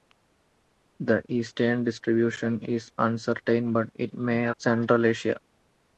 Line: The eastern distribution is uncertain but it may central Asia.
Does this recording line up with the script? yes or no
yes